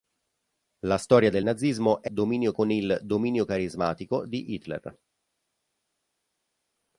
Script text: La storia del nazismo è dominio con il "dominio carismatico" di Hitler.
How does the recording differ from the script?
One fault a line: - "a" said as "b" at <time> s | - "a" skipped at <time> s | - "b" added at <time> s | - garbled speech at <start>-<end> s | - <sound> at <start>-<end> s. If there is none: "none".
none